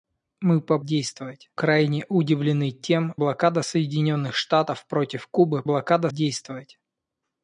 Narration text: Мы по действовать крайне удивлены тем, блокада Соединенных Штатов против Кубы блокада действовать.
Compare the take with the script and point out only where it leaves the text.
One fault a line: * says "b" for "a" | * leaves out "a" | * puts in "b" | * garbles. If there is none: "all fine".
all fine